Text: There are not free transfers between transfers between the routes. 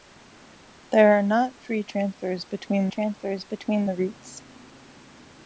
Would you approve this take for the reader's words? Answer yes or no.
yes